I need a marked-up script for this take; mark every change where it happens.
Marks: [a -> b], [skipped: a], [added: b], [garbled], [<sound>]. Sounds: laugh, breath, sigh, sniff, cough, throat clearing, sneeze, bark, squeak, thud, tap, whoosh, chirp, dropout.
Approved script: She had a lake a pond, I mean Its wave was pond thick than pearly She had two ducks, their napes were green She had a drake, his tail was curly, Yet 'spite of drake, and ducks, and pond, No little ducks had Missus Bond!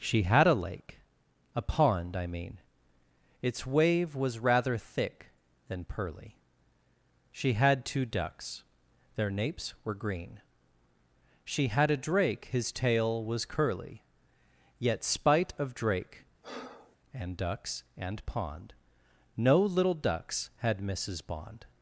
She had a lake a pond, I mean Its wave was [pond -> rather] thick than pearly She had two ducks, their napes were green She had a drake, his tail was curly, Yet 'spite of drake, [breath] and ducks, and pond, No little ducks had Missus Bond!